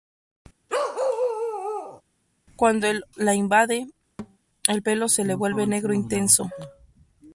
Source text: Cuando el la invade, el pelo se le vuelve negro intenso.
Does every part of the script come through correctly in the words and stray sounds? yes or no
no